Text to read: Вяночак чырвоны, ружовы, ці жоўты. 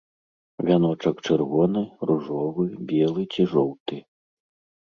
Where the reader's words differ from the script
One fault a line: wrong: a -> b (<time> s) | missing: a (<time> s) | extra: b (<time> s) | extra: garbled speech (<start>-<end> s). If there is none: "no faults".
extra: белы (2.9 s)